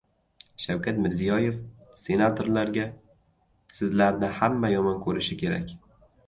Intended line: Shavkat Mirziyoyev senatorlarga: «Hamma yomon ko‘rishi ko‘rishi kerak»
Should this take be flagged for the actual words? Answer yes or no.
yes